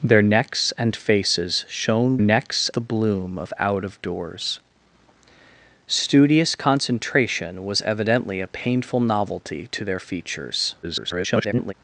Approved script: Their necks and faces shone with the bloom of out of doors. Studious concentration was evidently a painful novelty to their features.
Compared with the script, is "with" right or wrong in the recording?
wrong